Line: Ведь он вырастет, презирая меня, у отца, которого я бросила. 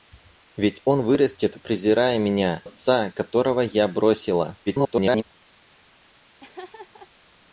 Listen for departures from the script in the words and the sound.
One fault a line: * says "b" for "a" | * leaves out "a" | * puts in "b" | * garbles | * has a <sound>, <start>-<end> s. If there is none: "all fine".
* leaves out "у"
* garbles
* has a laugh, 6.4-7.1 s